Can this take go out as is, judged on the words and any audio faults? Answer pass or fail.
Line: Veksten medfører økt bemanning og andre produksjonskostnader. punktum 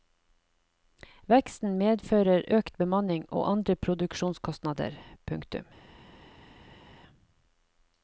pass